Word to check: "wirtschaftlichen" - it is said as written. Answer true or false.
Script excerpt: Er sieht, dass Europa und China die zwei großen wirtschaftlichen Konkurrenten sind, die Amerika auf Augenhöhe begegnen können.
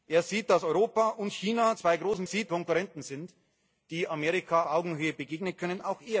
false